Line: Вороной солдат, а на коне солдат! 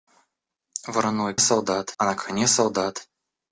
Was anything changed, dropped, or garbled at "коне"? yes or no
no